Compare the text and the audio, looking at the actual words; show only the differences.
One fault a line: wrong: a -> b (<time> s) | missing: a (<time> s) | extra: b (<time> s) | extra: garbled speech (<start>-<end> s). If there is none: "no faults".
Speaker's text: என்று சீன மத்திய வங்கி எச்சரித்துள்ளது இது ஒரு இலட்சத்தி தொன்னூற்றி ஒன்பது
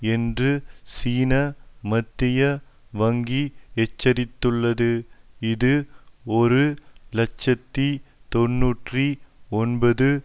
no faults